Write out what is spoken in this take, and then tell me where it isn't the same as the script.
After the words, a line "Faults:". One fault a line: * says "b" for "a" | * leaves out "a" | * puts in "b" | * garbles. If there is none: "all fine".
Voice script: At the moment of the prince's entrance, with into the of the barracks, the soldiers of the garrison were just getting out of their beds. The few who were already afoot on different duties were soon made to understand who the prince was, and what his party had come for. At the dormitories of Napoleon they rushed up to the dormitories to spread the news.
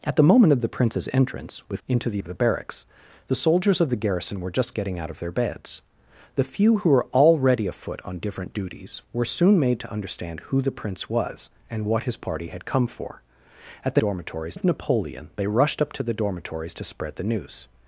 At the moment of the prince's entrance, with into the of the barracks, the soldiers of the garrison were just getting out of their beds. The few who were already afoot on different duties were soon made to understand who the prince was, and what his party had come for. At the dormitories of Napoleon they rushed up to the dormitories to spread the news.
Faults:
all fine